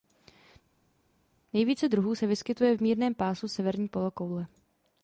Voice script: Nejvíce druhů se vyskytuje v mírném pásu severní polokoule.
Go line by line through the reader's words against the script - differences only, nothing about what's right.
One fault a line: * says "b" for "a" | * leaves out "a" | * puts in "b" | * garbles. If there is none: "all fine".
all fine